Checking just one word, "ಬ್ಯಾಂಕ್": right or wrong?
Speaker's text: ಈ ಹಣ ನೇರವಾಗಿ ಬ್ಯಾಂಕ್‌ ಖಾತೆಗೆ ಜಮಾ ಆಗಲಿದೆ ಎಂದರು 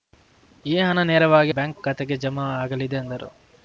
right